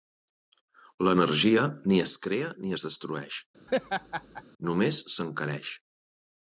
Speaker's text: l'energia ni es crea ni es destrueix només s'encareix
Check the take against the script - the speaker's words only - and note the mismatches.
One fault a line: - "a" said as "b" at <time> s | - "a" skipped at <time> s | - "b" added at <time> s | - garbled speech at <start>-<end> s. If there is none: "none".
none